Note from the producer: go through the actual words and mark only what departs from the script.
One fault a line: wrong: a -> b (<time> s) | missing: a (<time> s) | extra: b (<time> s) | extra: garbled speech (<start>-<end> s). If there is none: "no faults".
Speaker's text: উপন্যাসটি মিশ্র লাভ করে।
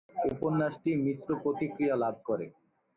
extra: প্রতিক্রিয়া (1.4 s)